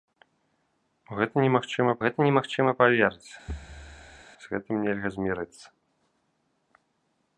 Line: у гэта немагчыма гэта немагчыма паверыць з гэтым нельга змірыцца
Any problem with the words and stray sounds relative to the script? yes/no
yes